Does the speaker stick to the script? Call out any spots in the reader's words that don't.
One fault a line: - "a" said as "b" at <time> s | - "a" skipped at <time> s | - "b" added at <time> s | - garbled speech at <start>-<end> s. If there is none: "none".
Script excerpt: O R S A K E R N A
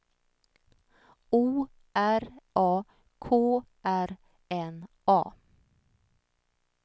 - "S" skipped at 2.4 s
- "E" skipped at 3.6 s